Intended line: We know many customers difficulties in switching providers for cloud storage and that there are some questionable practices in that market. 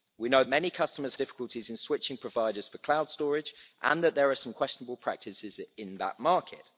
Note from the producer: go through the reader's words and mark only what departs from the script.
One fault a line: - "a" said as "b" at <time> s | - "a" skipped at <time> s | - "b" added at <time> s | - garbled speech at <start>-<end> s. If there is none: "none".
none